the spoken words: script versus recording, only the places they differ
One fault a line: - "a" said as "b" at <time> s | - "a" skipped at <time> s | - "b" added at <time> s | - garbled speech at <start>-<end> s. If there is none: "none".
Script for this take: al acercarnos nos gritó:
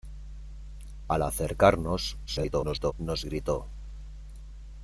- garbled speech at 2.3-2.9 s